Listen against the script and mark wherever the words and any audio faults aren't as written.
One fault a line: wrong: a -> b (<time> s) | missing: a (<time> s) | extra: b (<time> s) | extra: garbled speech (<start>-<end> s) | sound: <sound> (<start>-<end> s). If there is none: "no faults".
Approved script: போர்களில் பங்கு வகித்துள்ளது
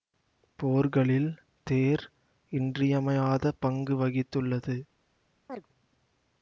extra: தேர் இன்றியமையாத (1.7 s)
sound: chirp (5.5-5.7 s)